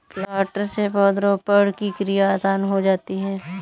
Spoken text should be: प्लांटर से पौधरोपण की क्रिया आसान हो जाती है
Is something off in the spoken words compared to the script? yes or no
no